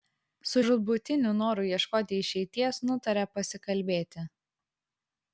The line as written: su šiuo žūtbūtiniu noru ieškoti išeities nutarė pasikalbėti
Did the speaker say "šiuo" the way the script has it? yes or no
no